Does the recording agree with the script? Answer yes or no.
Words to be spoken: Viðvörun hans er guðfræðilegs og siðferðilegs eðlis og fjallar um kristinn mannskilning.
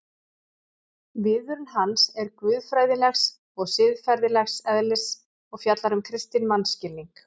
yes